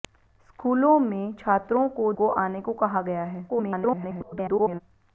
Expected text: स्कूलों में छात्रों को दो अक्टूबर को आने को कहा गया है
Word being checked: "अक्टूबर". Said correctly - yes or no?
no